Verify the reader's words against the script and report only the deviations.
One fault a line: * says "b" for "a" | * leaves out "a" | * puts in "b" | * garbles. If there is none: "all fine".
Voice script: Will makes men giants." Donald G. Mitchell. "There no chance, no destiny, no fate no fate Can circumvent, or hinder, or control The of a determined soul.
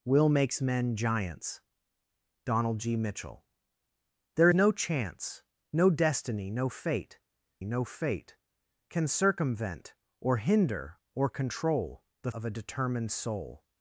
all fine